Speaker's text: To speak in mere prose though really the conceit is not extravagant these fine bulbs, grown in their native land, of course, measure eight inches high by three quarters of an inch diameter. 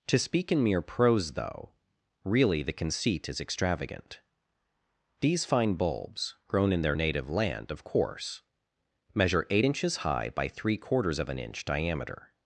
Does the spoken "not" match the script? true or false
false